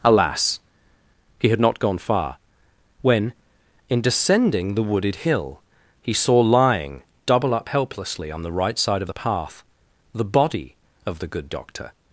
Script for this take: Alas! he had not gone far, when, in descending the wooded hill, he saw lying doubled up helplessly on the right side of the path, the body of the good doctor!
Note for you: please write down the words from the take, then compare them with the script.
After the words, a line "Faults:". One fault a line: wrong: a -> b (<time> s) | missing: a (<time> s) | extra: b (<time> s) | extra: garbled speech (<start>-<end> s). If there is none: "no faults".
Alas! he had not gone far, when, in descending the wooded hill, he saw lying double up helplessly on the right side of the path, the body of the good doctor!
Faults:
wrong: doubled -> double (7.2 s)